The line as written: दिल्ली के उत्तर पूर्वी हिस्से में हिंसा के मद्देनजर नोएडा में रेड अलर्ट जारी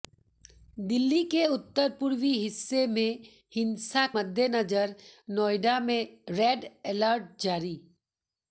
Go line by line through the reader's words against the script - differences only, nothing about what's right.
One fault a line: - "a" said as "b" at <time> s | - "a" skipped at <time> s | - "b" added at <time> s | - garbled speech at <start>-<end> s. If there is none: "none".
- "के" skipped at 4.1 s